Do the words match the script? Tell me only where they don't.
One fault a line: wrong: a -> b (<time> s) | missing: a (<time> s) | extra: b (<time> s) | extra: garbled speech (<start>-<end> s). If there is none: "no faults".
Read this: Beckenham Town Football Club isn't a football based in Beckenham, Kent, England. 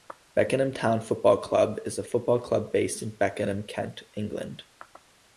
wrong: isn't -> is (1.9 s)
extra: club (2.4 s)